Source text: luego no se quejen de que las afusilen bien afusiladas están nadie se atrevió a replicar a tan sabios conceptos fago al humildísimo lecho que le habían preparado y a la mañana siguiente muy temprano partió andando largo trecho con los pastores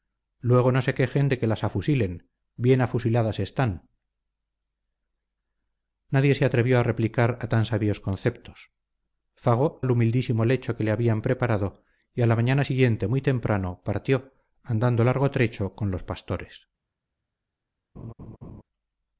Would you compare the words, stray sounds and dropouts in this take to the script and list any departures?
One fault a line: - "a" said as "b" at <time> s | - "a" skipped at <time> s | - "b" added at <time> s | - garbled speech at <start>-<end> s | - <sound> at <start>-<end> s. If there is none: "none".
- laugh at 18.0-18.6 s